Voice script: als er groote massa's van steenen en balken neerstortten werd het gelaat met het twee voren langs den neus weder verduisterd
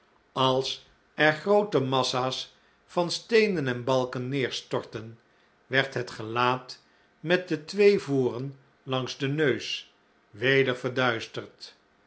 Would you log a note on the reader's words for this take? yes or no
yes